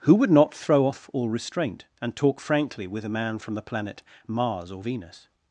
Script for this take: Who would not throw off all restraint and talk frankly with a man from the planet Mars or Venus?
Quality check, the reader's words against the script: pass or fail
pass